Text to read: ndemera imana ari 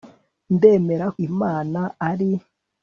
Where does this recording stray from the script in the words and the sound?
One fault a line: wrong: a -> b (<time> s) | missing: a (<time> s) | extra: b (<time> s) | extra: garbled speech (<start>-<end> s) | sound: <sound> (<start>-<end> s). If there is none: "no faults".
no faults